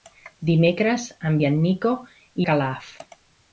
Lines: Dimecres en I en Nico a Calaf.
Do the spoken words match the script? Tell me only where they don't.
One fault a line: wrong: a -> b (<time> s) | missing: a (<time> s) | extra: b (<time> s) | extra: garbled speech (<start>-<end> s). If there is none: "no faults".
no faults